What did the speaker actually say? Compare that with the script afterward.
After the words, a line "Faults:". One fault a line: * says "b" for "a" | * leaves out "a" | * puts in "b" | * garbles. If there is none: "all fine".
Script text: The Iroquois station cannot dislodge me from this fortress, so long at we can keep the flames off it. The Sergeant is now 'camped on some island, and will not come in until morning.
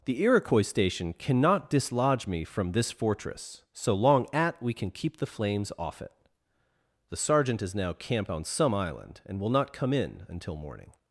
The Iroquois station cannot dislodge me from this fortress, so long at we can keep the flames off it. The Sergeant is now 'camped on some island, and will not come in until morning.
Faults:
all fine